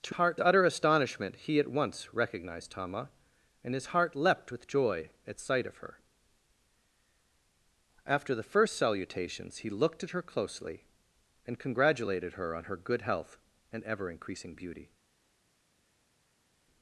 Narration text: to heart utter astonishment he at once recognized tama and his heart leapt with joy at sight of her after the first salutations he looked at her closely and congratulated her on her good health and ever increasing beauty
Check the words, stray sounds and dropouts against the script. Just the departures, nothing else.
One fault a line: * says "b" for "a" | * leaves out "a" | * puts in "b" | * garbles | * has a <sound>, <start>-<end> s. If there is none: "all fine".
all fine